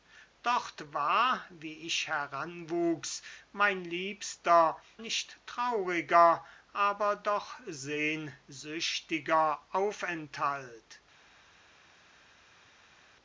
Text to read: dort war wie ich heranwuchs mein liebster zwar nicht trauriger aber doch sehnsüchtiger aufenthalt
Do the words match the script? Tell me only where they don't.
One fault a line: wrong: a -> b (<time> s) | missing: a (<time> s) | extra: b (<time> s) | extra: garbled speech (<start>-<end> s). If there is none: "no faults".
missing: zwar (4.8 s)